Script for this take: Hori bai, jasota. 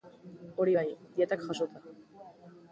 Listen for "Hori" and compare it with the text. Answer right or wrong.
right